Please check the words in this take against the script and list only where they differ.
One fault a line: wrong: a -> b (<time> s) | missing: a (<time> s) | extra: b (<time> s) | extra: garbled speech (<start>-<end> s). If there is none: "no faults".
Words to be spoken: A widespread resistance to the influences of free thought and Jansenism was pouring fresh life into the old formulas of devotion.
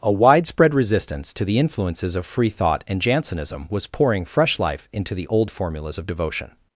no faults